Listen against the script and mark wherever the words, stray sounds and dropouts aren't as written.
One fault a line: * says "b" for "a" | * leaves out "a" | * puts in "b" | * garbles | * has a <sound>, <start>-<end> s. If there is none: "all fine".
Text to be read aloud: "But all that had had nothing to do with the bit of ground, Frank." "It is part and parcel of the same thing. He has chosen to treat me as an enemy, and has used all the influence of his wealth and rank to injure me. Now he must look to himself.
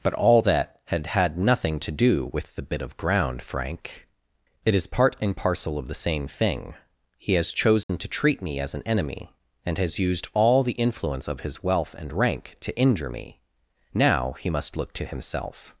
* has a dropout, 7.8-7.9 s